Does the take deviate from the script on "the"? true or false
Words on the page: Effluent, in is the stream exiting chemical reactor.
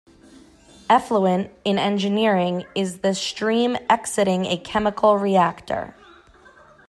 false